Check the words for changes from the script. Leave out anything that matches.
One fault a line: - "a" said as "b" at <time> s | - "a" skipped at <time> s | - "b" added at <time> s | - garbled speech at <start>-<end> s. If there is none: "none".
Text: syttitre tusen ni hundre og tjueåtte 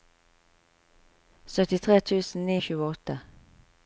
- "hundre" skipped at 2.6 s